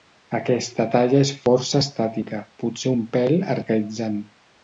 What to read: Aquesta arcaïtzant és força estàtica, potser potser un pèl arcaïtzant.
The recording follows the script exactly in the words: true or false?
false